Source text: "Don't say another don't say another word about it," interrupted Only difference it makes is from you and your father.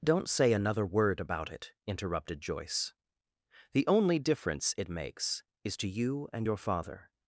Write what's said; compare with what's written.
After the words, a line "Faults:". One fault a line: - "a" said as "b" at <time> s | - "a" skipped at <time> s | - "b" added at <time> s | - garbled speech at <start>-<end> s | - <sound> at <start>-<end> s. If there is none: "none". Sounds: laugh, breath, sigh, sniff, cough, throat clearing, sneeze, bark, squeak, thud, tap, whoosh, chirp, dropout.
"Don't say another word about it," interrupted Joyce. "The only difference it makes is to you and your father.
Faults:
- "don't say another" skipped at 0.8 s
- "Joyce The" added at 2.4 s
- "from" said as "to" at 5.8 s